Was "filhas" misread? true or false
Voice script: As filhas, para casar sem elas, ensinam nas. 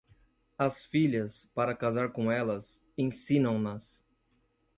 false